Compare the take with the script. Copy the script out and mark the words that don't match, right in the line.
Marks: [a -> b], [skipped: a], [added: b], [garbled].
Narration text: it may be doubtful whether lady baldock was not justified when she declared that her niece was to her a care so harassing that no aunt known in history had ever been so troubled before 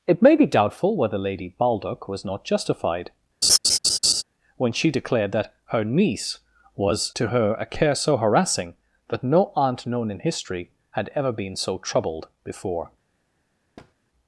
it may be doubtful whether lady baldock was not justified when she declared that her niece was to her a care so harassing that no aunt known in history had ever been so troubled before